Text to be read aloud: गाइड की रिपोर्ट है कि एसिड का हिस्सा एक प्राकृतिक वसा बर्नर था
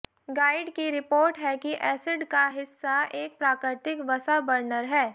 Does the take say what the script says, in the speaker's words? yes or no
no